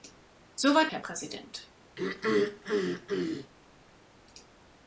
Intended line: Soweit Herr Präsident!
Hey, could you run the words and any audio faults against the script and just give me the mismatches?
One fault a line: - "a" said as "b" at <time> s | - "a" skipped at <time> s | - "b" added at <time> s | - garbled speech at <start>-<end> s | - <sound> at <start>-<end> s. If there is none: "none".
- throat clearing at 2.0-3.5 s